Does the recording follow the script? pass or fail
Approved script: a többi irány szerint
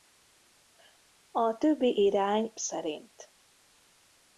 pass